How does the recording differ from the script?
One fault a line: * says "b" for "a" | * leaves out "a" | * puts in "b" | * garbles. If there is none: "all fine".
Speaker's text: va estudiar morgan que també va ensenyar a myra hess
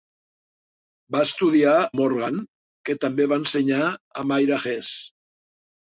all fine